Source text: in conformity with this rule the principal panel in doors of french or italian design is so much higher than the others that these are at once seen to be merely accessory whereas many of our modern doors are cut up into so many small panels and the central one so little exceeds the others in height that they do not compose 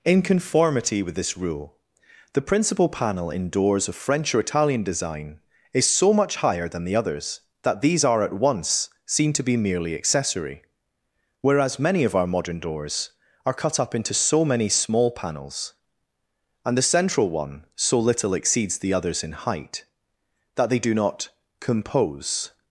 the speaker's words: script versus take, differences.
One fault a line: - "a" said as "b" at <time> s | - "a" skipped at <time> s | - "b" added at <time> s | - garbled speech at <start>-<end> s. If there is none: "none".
none